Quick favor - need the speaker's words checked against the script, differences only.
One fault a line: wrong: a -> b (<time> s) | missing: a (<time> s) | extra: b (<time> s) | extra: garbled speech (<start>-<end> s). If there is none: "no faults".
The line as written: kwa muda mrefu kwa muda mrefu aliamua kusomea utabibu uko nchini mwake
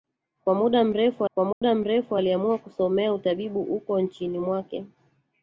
no faults